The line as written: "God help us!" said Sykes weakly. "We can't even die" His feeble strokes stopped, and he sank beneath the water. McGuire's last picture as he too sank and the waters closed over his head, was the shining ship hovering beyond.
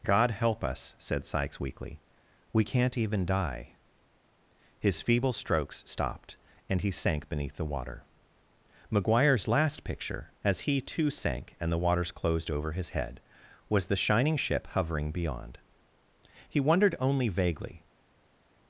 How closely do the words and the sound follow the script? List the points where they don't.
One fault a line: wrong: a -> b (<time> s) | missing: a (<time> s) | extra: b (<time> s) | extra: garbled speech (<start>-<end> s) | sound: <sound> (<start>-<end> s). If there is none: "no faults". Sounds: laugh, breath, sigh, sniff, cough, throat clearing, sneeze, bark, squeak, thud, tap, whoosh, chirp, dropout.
extra: He wondered only vaguely (16.5 s)